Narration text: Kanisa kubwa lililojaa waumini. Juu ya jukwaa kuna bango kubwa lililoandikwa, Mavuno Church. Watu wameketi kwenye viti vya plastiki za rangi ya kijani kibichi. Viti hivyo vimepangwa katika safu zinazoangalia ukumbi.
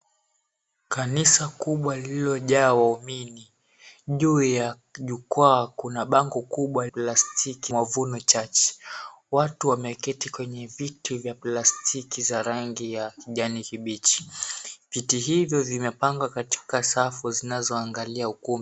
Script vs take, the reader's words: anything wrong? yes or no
yes